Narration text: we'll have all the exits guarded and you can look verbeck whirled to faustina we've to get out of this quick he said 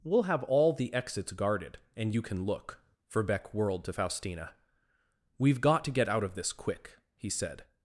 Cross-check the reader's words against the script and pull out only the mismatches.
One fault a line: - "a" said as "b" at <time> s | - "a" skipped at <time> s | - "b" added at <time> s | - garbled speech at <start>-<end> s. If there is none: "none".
- "got" added at 5.6 s